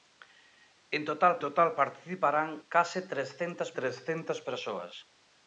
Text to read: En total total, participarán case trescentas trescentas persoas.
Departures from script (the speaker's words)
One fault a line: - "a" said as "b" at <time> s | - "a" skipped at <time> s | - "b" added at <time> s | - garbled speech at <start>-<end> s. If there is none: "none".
none